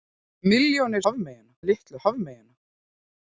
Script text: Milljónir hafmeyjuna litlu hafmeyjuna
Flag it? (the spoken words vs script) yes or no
no